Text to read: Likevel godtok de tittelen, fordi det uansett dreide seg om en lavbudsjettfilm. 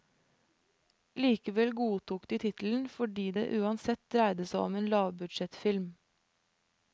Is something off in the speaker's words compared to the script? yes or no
no